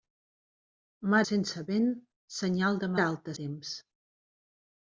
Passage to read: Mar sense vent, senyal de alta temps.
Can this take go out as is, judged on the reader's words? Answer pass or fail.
pass